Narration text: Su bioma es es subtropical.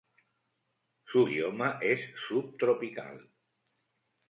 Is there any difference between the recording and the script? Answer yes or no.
yes